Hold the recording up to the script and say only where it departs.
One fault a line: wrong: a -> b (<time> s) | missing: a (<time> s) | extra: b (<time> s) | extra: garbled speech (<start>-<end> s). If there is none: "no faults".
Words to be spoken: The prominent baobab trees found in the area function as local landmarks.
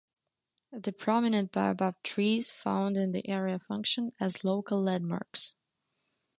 no faults